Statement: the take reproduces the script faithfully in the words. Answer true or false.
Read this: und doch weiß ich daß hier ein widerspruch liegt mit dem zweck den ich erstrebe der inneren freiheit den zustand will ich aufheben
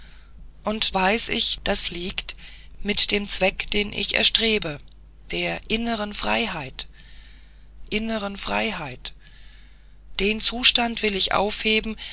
false